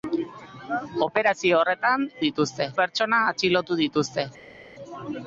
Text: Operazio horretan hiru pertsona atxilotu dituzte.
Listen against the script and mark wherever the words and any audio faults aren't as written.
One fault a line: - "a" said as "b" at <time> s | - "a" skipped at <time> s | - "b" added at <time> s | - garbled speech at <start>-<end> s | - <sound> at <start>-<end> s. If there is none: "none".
- "hiru" said as "dituzte" at 2.3 s